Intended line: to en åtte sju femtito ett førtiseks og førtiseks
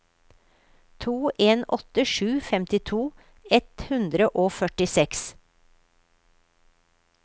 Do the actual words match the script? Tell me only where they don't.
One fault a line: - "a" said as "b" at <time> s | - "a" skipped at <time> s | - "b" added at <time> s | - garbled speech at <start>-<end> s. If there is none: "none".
- "førtiseks" said as "hundre" at 3.9 s